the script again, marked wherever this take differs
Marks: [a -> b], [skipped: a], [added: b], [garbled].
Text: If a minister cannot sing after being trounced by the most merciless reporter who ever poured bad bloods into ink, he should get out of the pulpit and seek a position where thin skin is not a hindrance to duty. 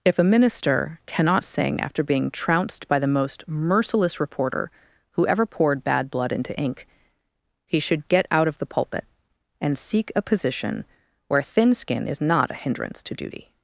If a minister cannot sing after being trounced by the most merciless reporter who ever poured bad [bloods -> blood] into ink, he should get out of the pulpit and seek a position where thin skin is not a hindrance to duty.